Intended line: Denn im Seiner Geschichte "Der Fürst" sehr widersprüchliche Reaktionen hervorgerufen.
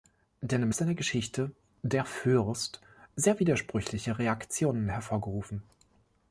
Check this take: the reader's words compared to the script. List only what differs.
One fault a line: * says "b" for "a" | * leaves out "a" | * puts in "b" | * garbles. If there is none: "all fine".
all fine